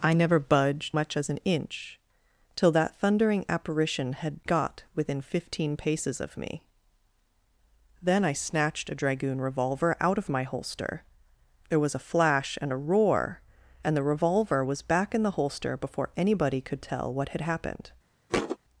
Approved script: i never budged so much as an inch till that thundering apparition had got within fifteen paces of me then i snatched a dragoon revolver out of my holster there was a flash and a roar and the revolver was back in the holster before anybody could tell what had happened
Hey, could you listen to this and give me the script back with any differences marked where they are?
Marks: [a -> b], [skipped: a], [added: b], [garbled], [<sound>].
i never budged [skipped: so] much as an inch till that thundering apparition had got within fifteen paces of me then i snatched a dragoon revolver out of my holster there was a flash and a roar and the revolver was back in the holster before anybody could tell what had happened [thud]